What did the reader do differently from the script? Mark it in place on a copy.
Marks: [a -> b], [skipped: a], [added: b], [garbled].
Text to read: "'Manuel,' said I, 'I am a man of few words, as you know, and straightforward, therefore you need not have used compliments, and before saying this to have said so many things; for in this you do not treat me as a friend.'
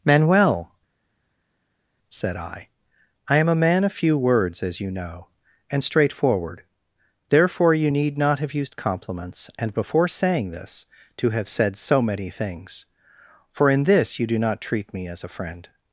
"'Manuel,' said I, 'I am a man of few words, as you know, and straightforward, therefore you need not have used compliments, and before saying this to have said so many things; for in this you do not treat me as a friend.'